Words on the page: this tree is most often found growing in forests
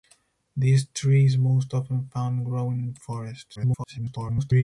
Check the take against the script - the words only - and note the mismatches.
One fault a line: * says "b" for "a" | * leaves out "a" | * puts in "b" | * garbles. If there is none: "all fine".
* garbles